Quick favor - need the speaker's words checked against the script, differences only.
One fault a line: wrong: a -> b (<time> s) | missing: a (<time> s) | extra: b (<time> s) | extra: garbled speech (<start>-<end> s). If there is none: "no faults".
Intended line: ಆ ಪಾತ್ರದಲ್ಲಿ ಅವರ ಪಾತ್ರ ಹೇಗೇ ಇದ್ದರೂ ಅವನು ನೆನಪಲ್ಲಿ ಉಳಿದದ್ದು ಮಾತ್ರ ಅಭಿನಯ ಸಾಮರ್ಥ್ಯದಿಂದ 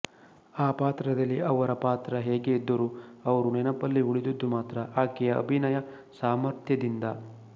wrong: ಅವನು -> ಅವರು (3.2 s)
extra: ಆಕೆಯ (5.0 s)